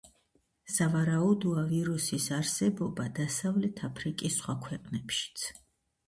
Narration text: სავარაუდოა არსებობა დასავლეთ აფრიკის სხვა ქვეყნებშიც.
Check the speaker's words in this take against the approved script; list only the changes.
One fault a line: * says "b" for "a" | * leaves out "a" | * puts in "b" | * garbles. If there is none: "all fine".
* puts in "ვირუსის"